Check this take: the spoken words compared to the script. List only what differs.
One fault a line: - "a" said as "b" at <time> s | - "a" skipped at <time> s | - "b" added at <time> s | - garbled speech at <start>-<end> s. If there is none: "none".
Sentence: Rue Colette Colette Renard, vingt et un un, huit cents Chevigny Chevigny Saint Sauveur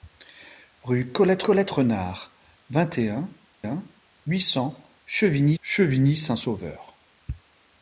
none